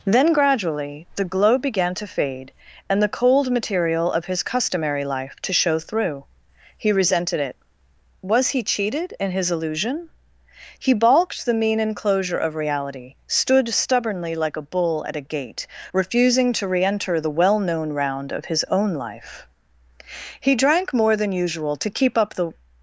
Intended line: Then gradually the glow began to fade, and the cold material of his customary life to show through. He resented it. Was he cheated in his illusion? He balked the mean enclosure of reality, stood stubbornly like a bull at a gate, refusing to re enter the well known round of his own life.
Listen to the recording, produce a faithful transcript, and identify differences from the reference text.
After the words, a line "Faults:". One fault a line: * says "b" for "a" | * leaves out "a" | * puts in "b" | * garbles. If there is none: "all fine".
Then gradually the glow began to fade, and the cold material of his customary life to show through. He resented it. Was he cheated in his illusion? He balked the mean enclosure of reality, stood stubbornly like a bull at a gate, refusing to re enter the well known round of his own life. He drank more than usual to keep up the
Faults:
* puts in "He drank more than usual to keep up the"